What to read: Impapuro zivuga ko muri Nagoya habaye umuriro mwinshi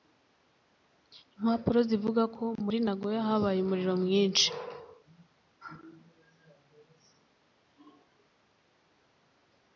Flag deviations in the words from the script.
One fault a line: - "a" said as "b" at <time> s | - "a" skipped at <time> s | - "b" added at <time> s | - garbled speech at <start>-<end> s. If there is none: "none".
none